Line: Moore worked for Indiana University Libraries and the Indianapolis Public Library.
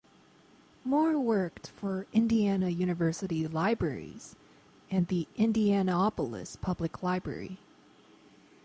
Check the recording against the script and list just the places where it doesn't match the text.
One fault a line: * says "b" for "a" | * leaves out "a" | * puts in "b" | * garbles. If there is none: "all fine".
all fine